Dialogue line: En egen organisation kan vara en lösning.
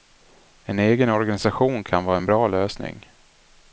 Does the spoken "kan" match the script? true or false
true